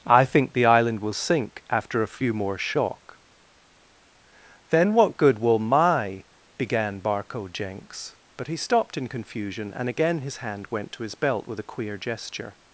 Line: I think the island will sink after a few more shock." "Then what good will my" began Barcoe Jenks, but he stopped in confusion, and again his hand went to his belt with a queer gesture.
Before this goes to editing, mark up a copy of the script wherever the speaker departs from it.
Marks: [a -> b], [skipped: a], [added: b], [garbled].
I think the island will sink after a few more shock." "Then what good will my" began Barcoe Jenks, but he stopped in confusion, and again his hand went to his belt with a queer gesture.